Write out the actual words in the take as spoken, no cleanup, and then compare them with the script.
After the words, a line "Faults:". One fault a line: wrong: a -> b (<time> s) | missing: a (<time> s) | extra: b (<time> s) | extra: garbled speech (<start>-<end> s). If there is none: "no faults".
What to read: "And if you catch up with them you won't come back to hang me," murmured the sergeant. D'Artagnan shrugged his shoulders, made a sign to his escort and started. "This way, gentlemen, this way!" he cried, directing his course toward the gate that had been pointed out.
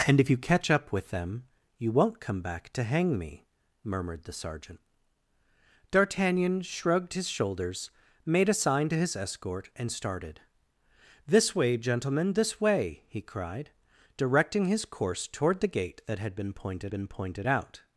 "And if you catch up with them you won't come back to hang me," murmured the sergeant. D'Artagnan shrugged his shoulders, made a sign to his escort and started. "This way, gentlemen, this way!" he cried, directing his course toward the gate that had been pointed been pointed out.
Faults:
extra: been pointed (16.9 s)